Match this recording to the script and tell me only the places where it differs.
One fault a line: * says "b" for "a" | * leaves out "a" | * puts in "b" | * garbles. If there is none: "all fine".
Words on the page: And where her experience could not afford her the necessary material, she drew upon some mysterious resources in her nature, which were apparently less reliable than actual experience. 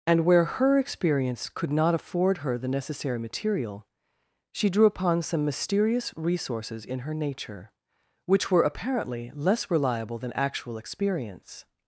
all fine